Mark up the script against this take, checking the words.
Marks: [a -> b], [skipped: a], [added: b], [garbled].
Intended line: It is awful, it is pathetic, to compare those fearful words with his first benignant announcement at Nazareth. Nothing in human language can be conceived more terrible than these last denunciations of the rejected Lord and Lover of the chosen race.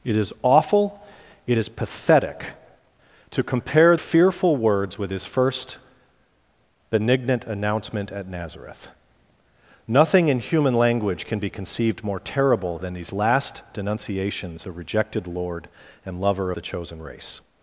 It is awful, it is pathetic, to compare [skipped: those] fearful words with his first benignant announcement at Nazareth. Nothing in human language can be conceived more terrible than these last denunciations [skipped: of] the rejected Lord and Lover [skipped: of] the chosen race.